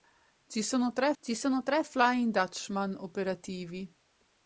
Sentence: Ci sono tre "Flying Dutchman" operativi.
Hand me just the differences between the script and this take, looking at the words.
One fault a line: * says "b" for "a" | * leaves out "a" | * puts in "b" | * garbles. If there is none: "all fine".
* puts in "ci sono tre"